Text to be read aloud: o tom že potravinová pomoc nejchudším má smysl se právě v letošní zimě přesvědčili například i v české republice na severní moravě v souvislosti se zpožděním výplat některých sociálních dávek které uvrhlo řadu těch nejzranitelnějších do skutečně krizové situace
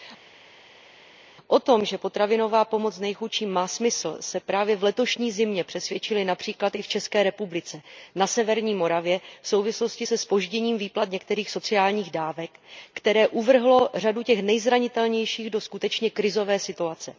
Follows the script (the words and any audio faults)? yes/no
yes